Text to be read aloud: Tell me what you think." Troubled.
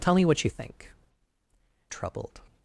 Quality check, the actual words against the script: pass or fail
pass